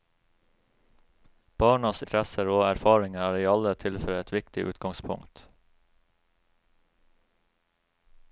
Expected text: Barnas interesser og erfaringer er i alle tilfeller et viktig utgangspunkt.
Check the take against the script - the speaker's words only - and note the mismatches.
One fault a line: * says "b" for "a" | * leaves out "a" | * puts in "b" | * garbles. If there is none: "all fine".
all fine